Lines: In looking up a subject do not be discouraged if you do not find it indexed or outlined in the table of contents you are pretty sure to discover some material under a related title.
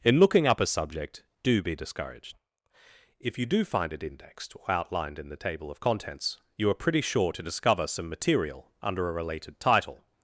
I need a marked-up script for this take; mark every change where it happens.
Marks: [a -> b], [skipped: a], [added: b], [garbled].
In looking up a subject do [skipped: not] be discouraged if you do [skipped: not] find it indexed or outlined in the table of contents you are pretty sure to discover some material under a related title.